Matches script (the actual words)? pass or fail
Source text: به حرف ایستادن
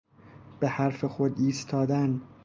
fail